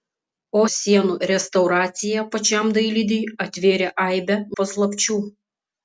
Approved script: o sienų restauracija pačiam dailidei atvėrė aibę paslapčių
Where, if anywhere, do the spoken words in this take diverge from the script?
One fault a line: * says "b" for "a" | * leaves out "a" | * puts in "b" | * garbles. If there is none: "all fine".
all fine